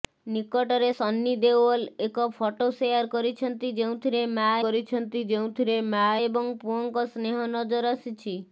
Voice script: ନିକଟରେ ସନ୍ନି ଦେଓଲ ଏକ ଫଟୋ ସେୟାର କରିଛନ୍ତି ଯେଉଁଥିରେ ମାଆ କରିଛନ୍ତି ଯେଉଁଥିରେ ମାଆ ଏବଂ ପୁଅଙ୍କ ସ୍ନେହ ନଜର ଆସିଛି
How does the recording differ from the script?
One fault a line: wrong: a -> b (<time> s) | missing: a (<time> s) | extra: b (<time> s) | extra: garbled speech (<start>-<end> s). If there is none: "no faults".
no faults